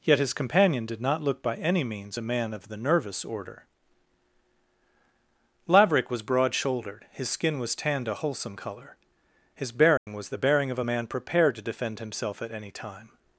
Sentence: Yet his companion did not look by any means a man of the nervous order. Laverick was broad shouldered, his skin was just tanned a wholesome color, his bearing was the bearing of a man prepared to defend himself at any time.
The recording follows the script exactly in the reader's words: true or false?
false